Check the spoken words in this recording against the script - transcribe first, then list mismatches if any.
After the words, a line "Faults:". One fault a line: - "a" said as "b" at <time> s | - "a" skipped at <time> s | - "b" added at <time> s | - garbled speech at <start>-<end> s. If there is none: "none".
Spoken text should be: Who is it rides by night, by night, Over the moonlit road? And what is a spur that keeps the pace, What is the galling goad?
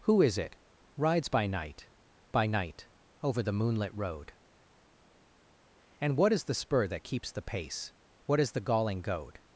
Who is it rides by night, by night, Over the moonlit road? And what is the spur that keeps the pace, What is the galling goad?
Faults:
- "a" said as "the" at 6.4 s